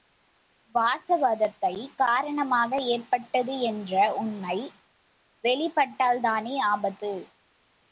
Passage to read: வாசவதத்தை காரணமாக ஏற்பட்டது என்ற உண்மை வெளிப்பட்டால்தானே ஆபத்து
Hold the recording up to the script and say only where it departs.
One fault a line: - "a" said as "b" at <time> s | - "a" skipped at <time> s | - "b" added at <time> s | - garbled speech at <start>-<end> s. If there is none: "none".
none